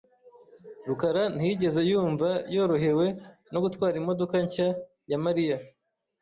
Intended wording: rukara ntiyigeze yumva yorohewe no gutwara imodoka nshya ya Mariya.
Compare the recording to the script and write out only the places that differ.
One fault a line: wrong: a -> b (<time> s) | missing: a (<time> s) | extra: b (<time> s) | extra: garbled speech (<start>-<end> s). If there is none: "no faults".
no faults